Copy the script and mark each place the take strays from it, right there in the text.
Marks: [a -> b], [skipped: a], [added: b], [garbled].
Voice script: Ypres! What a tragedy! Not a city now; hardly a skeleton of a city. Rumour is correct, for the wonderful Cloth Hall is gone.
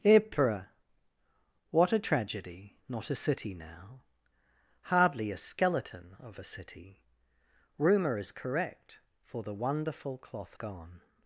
Ypres! What a tragedy! Not a city now; hardly a skeleton of a city. Rumour is correct, for the wonderful Cloth [skipped: Hall is] gone.